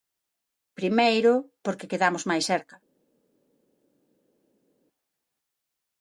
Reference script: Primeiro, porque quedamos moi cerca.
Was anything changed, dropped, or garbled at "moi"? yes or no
yes